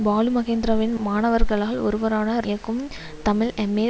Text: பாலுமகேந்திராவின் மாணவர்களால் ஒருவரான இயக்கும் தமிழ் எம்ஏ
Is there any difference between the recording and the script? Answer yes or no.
no